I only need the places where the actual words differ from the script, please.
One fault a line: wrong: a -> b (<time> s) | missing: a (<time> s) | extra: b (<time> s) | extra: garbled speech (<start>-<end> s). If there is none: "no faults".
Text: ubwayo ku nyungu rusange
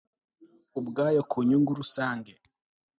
no faults